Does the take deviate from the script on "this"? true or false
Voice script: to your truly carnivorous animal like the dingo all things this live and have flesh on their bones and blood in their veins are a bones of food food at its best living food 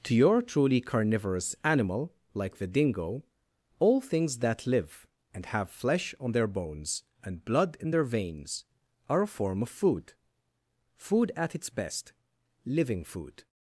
true